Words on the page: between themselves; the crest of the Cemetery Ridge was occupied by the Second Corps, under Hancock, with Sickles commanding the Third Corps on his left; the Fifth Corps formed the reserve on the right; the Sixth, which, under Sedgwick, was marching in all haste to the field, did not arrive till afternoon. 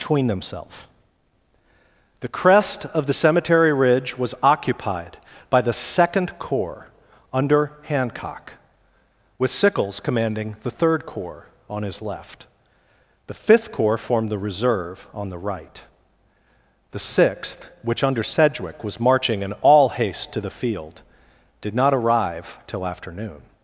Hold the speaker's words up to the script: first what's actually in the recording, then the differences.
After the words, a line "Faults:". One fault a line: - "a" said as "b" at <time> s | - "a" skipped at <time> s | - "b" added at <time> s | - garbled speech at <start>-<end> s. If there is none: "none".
between themselves; the crest of the Cemetery Ridge was occupied by the Second Corps, under Hancock, with Sickles commanding the Third Corps on his left; the Fifth Corps formed the reserve on the right; the Sixth, which, under Sedgwick, was marching in all haste to the field, did not arrive till afternoon.
Faults:
none